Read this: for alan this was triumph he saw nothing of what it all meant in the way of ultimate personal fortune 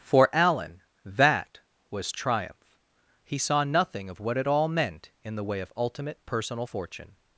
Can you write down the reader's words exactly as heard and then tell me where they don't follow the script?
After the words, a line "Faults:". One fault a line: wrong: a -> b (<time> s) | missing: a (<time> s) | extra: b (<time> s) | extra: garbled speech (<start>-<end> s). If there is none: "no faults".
for alan that was triumph he saw nothing of what it all meant in the way of ultimate personal fortune
Faults:
wrong: this -> that (1.1 s)